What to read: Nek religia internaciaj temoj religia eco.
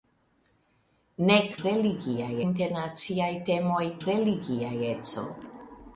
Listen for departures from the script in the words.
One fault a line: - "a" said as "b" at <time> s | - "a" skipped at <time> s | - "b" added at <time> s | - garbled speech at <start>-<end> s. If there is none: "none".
none